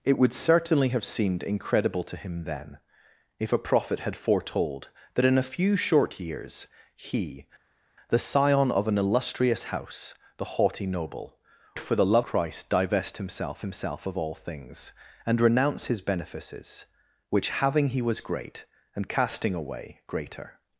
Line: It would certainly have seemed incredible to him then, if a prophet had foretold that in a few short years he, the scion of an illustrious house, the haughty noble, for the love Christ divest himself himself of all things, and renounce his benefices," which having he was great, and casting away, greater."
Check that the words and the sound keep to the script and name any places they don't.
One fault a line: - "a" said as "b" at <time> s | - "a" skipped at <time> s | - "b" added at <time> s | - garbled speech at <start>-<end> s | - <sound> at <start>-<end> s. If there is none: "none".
none